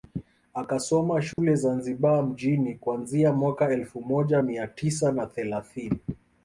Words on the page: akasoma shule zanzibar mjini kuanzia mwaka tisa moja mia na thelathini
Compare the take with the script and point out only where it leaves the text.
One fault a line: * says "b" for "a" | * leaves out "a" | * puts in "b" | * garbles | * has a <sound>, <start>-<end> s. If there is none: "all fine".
* has a dropout, 1.3-1.4 s
* says "elfu" for "tisa"
* puts in "tisa"